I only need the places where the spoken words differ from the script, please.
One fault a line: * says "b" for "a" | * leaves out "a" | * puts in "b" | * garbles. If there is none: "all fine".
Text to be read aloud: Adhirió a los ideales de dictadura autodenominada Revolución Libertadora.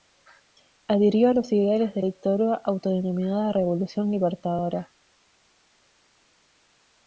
all fine